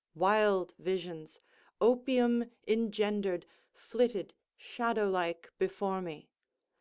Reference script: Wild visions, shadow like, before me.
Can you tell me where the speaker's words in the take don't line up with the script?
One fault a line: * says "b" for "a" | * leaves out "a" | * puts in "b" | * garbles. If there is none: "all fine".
* puts in "opium engendered flitted"